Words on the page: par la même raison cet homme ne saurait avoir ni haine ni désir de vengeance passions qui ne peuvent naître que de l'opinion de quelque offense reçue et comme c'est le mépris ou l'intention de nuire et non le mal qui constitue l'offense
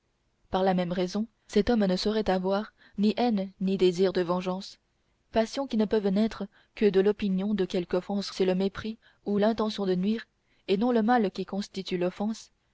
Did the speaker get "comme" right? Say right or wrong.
wrong